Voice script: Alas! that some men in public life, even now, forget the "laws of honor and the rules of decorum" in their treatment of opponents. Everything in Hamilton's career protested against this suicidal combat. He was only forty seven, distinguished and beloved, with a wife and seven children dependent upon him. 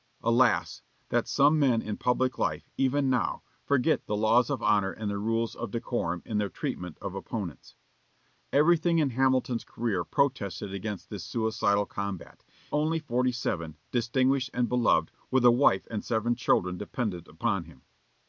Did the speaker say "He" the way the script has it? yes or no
no